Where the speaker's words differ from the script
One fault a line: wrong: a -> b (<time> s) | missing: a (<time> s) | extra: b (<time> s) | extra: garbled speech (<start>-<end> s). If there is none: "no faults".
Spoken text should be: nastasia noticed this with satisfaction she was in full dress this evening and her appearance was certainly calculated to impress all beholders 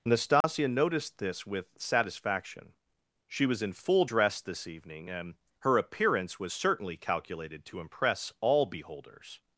no faults